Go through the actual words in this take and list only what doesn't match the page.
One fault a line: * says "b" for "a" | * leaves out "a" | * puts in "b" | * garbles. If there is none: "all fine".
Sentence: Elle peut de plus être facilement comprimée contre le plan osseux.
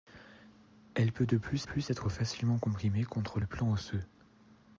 * puts in "plus"